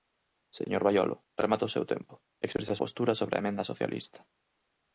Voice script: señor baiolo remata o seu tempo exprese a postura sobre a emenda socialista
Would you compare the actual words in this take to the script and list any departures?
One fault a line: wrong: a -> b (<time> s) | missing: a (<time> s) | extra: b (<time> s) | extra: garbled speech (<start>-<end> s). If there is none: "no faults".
no faults